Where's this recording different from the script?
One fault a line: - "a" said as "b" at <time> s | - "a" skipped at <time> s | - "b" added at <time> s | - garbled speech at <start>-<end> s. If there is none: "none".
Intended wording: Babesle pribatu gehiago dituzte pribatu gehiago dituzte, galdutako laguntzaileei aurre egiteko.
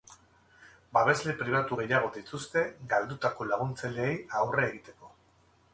- "pribatu gehiago dituzte" skipped at 2.6 s